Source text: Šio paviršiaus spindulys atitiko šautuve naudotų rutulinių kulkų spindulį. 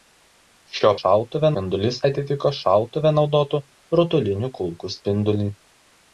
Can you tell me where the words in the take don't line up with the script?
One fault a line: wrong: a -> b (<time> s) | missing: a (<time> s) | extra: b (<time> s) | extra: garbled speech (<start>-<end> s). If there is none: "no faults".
wrong: paviršiaus -> šautuve (1.0 s)